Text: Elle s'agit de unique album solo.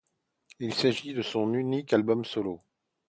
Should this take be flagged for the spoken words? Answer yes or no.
yes